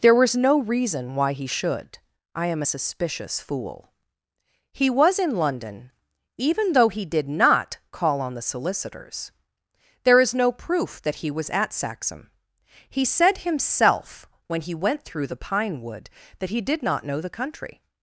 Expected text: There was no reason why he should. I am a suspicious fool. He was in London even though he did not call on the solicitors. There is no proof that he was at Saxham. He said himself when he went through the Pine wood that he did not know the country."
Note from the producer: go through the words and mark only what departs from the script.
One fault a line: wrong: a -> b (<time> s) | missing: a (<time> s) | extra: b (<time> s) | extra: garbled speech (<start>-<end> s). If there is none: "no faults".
no faults